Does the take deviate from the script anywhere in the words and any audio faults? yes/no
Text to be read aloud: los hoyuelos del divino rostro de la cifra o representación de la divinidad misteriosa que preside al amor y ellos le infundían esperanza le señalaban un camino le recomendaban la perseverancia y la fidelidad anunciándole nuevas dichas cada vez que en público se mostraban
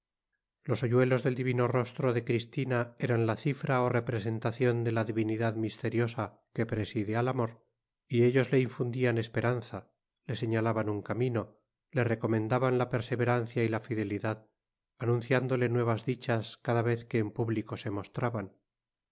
yes